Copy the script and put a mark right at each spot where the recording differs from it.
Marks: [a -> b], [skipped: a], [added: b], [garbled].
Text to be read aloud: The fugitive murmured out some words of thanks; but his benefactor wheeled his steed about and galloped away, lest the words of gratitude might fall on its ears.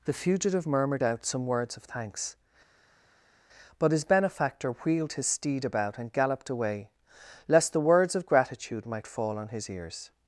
The fugitive murmured out some words of thanks; but his benefactor wheeled his steed about and galloped away, lest the words of gratitude might fall on [its -> his] ears.